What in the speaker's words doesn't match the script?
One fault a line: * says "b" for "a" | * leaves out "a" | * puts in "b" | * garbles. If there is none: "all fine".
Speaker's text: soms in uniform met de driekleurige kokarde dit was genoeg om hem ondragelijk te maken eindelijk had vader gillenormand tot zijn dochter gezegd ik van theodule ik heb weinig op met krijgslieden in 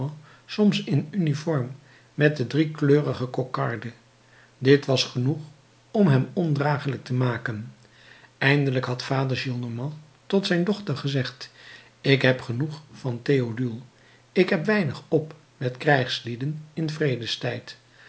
* puts in "heb genoeg"